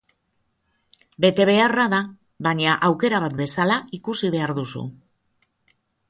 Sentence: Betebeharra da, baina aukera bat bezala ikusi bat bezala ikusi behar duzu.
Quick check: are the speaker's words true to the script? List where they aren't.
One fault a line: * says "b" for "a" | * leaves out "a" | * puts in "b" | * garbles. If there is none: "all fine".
* leaves out "bat bezala ikusi"